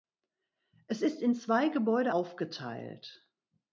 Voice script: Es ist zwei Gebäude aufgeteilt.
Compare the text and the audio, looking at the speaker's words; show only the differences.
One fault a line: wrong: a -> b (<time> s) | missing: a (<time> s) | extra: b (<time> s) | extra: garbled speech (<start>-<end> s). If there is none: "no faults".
extra: in (1.2 s)